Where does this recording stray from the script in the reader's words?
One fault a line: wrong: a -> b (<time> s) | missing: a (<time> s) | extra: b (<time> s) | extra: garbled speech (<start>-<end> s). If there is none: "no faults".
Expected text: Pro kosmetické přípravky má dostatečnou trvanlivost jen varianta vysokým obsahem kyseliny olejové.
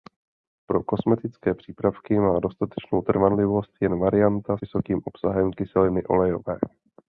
no faults